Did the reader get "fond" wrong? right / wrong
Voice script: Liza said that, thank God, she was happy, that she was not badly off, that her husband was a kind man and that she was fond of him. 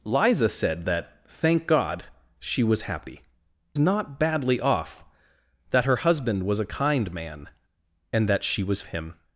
wrong